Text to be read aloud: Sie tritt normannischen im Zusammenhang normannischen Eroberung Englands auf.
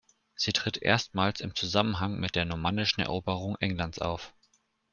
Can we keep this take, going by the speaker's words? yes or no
no